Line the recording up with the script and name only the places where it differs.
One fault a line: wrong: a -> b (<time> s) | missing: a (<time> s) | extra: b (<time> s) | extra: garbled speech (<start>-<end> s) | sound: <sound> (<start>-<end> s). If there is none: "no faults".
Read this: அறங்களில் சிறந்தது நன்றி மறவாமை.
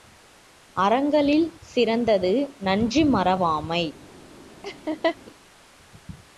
sound: laugh (4.6-5.2 s)